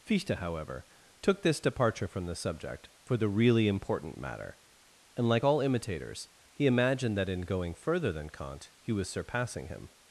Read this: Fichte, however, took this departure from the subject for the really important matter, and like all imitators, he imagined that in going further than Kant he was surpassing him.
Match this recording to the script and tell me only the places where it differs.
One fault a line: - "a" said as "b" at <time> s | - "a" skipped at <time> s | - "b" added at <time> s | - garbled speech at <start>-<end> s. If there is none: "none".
none